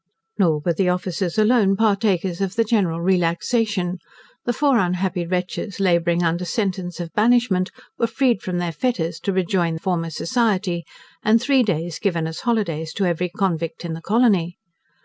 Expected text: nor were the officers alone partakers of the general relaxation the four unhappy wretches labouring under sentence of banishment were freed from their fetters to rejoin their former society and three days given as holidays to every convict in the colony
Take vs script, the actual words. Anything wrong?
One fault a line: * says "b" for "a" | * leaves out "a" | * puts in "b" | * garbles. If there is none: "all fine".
* leaves out "their"